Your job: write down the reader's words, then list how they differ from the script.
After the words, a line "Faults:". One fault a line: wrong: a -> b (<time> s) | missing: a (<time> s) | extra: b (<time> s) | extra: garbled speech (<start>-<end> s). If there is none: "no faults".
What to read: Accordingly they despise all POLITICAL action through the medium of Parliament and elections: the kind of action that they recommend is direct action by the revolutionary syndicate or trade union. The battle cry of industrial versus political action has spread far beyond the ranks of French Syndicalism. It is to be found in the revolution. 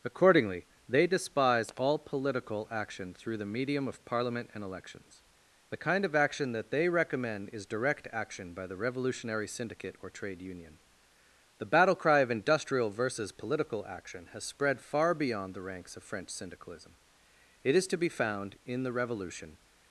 Accordingly they despise all POLITICAL action through the medium of Parliament and elections: the kind of action that they recommend is direct action by the revolutionary syndicate or trade union. The battle cry of industrial versus political action has spread far beyond the ranks of French Syndicalism. It is to be found in the revolution.
Faults:
no faults